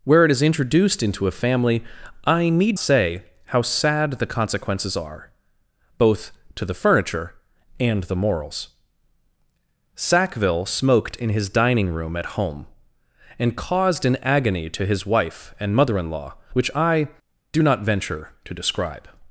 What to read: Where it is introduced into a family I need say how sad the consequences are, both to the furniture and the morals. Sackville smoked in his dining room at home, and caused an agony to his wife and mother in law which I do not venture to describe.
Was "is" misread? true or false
false